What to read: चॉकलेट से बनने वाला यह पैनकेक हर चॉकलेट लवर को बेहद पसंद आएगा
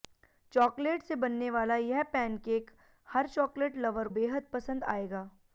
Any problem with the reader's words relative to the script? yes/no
yes